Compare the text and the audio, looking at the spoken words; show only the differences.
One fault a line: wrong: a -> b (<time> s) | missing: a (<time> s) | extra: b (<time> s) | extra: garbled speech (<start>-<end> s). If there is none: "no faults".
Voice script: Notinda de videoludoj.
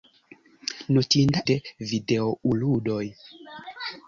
no faults